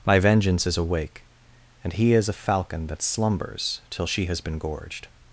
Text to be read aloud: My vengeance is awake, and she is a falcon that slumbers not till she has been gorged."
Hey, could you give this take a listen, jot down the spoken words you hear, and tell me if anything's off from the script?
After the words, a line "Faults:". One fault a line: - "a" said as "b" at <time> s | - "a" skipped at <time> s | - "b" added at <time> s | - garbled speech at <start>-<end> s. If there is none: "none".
My vengeance is awake, and he is a falcon that slumbers till she has been gorged."
Faults:
- "she" said as "he" at 1.9 s
- "not" skipped at 3.8 s